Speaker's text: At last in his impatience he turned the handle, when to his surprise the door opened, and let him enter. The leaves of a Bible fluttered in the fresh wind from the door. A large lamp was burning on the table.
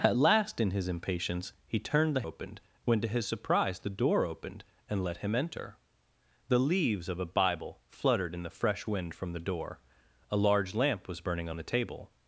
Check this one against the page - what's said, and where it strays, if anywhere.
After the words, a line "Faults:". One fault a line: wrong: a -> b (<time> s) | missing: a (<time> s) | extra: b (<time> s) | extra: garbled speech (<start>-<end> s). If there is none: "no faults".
At last in his impatience he turned the opened, when to his surprise the door opened, and let him enter. The leaves of a Bible fluttered in the fresh wind from the door. A large lamp was burning on the table.
Faults:
wrong: handle -> opened (2.2 s)